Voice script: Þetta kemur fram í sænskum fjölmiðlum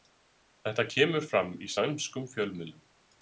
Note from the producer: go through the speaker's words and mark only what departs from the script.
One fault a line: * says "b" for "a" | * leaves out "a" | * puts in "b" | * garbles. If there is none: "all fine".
all fine